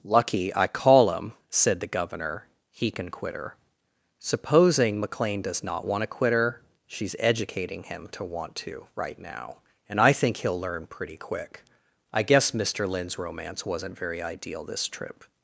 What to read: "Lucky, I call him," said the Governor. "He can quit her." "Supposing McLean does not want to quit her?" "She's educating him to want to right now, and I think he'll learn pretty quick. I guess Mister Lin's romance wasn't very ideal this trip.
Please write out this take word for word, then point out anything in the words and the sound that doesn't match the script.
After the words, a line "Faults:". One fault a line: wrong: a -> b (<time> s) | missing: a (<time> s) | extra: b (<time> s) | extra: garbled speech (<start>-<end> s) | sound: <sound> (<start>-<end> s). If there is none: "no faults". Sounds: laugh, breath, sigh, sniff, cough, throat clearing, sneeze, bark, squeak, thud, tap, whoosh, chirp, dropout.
"Lucky, I call him," said the Governor. "He can quit her." "Supposing McLean does not want to quit her?" "She's educating him to want to right now, and I think he'll learn pretty quick. I guess Mister Lin's romance wasn't very ideal this trip.
Faults:
no faults